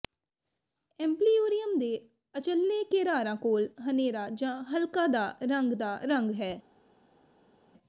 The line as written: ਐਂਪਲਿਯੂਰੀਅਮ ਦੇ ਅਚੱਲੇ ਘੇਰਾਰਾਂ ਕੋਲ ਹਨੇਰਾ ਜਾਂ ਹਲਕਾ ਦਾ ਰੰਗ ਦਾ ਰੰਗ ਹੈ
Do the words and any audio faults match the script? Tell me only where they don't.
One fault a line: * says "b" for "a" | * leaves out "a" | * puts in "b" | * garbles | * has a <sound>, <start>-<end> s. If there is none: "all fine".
all fine